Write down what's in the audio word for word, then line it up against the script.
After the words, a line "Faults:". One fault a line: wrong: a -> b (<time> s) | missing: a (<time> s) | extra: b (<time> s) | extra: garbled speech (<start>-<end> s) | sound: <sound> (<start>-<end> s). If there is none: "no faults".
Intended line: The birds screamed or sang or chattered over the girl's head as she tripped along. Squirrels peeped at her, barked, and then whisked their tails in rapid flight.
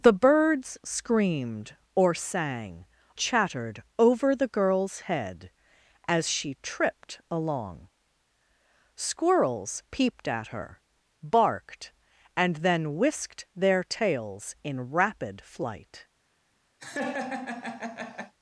The birds screamed or sang chattered over the girl's head as she tripped along. Squirrels peeped at her, barked, and then whisked their tails in rapid flight.
Faults:
missing: or (2.9 s)
sound: laugh (16.8-18.3 s)